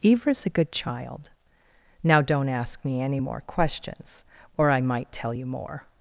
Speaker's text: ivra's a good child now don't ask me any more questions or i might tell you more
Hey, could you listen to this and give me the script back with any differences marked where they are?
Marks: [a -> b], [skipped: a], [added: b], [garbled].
ivra's a good child now don't ask me any more questions or i might tell you more